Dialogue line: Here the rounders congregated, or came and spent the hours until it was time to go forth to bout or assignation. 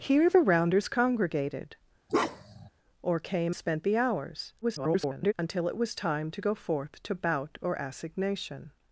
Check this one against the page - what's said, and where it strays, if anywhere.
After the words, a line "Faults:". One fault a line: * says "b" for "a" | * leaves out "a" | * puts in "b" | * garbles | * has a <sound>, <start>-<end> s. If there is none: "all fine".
Here the rounders congregated, or came spent the hours [garbled] until it was time to go forth to bout or assignation.
Faults:
* has a bark, 2.1-2.7 s
* leaves out "and"
* garbles